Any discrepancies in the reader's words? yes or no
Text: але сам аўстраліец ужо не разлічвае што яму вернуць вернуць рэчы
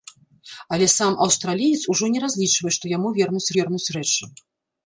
no